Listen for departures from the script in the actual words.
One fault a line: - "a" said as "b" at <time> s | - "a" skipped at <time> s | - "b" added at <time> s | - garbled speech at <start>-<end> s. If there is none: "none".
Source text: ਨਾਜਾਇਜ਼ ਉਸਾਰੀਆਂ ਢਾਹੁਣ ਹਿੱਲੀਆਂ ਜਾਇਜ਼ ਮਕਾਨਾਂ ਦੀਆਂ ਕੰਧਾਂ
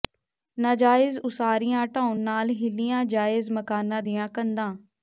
- "ਨਾਲ" added at 2.2 s